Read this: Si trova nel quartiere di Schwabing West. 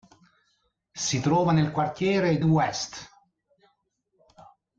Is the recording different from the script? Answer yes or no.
yes